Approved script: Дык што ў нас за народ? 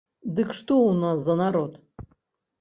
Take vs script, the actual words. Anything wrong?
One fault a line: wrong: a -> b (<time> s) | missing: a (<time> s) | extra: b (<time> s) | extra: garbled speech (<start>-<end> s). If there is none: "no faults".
no faults